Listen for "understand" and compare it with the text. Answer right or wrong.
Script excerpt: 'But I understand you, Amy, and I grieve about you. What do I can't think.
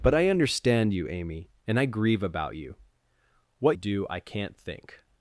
right